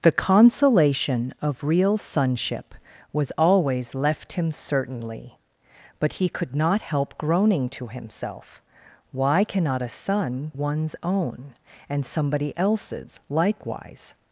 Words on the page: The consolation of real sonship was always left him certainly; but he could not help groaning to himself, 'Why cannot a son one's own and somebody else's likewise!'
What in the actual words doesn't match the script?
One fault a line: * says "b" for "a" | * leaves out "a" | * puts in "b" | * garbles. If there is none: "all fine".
all fine